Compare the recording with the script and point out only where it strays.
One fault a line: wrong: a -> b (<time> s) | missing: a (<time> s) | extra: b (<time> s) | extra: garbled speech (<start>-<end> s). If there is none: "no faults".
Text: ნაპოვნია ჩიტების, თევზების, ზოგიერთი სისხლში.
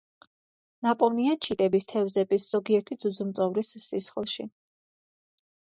extra: ძუძუმწოვრის (3.1 s)